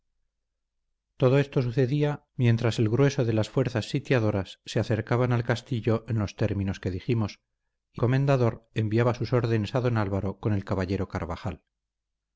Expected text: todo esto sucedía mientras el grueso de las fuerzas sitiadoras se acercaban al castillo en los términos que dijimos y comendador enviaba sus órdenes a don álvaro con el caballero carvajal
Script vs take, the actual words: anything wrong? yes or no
no